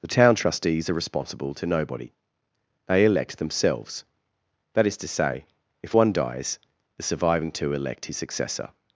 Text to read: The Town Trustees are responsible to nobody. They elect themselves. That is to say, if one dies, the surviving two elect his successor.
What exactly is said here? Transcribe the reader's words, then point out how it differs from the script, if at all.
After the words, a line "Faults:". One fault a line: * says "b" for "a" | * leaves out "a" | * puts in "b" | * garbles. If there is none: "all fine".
The Town Trustees are responsible to nobody. They elect themselves. That is to say, if one dies, the surviving two elect his successor.
Faults:
all fine